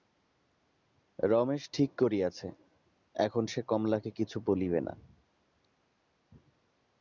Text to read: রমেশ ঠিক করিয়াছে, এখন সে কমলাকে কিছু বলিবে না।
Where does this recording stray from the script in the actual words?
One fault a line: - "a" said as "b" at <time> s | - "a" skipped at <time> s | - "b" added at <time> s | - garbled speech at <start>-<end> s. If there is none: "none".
none